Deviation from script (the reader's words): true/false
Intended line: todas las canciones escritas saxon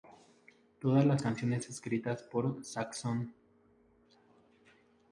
true